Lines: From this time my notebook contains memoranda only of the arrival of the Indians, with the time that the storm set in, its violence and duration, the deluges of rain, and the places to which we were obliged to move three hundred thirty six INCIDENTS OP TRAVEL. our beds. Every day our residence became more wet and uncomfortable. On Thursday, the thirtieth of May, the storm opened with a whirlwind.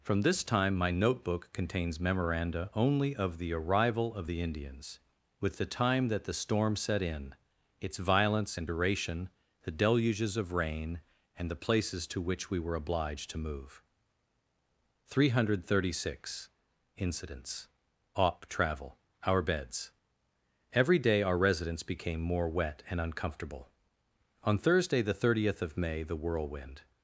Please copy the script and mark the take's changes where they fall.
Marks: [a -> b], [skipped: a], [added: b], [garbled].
From this time my notebook contains memoranda only of the arrival of the Indians, with the time that the storm set in, its violence and duration, the deluges of rain, and the places to which we were obliged to move three hundred thirty six INCIDENTS OP TRAVEL. our beds. Every day our residence became more wet and uncomfortable. On Thursday, the thirtieth of May, the [skipped: storm opened with a] whirlwind.